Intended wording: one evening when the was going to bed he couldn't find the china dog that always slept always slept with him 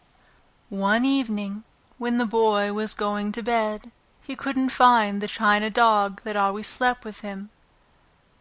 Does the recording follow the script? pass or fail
fail